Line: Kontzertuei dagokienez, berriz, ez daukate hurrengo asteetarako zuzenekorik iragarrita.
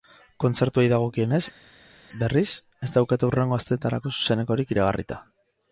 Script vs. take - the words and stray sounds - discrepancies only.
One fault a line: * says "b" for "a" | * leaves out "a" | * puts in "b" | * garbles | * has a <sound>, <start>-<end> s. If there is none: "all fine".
all fine